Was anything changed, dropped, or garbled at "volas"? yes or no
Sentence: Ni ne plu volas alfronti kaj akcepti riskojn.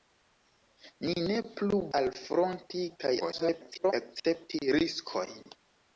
yes